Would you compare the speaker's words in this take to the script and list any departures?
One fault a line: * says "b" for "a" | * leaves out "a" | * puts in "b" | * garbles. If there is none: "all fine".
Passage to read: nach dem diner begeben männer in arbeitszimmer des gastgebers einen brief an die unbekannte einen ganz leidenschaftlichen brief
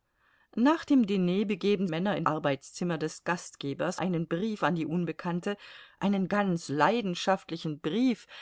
all fine